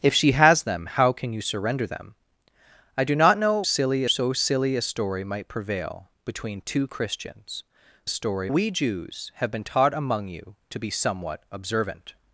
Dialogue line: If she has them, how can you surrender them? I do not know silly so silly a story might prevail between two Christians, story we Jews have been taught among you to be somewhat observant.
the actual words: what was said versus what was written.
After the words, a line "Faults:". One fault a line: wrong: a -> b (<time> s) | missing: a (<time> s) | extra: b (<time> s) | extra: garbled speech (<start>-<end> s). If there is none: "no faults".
If she has them, how can you surrender them? I do not know silly so silly a story might prevail between two Christians, story we Jews have been taught among you to be somewhat observant.
Faults:
no faults